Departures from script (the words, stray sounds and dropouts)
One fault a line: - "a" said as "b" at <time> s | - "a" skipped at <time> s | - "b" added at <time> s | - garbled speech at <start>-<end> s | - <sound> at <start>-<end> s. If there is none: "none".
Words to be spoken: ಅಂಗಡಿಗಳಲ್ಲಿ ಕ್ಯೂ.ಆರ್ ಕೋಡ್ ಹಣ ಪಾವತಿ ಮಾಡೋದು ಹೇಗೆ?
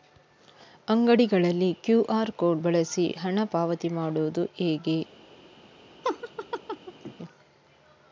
- "ಬಳಸಿ" added at 2.6 s
- laugh at 6.0-7.1 s